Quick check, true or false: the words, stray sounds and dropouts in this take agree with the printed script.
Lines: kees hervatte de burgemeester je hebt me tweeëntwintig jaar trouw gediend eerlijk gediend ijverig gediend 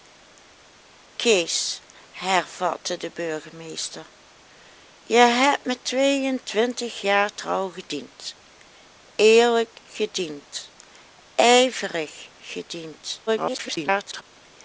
false